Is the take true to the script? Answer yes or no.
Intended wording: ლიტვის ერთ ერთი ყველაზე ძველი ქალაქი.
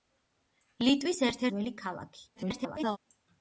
no